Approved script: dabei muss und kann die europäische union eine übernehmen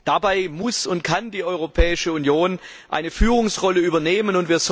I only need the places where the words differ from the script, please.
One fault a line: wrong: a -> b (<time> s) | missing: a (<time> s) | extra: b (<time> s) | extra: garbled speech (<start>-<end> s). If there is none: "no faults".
extra: führungsrolle (3.1 s)